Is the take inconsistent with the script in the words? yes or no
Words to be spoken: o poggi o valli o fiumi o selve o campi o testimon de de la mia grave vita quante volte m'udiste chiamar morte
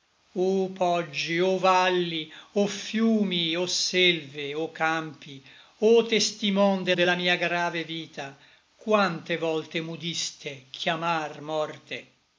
no